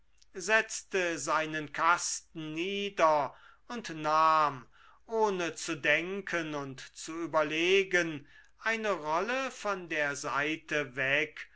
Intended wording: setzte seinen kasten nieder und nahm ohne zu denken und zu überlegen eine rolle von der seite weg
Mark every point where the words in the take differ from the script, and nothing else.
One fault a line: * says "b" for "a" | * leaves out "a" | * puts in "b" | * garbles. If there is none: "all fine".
all fine